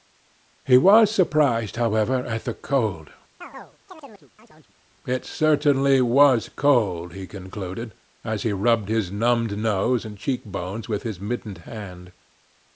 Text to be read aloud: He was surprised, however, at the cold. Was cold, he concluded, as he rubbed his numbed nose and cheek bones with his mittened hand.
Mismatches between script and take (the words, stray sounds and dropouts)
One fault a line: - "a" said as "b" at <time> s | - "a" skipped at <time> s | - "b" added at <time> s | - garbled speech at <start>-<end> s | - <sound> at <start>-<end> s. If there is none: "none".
- chirp at 3.4-4.8 s
- "It certainly" added at 5.1 s